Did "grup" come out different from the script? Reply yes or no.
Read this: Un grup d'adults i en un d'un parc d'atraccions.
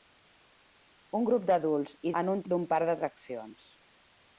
no